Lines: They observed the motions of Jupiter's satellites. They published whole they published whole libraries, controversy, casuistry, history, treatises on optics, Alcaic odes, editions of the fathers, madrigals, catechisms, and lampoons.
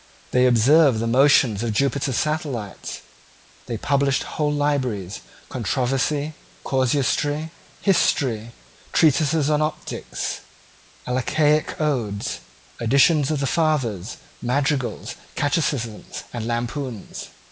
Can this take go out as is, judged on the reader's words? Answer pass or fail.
fail